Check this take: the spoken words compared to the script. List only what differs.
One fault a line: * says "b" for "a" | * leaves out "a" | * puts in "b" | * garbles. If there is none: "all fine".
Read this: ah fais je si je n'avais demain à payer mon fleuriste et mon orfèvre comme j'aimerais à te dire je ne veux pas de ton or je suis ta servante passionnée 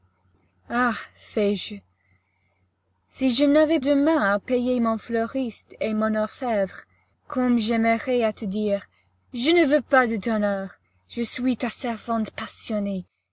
all fine